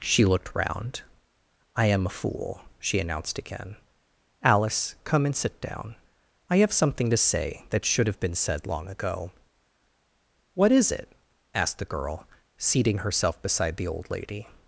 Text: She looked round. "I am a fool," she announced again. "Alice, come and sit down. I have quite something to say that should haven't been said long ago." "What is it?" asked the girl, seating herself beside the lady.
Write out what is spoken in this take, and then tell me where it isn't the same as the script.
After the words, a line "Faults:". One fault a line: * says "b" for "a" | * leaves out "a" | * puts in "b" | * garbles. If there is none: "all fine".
She looked round. "I am a fool," she announced again. "Alice, come and sit down. I have something to say that should have been said long ago." "What is it?" asked the girl, seating herself beside the old lady.
Faults:
* leaves out "quite"
* says "have" for "haven't"
* puts in "old"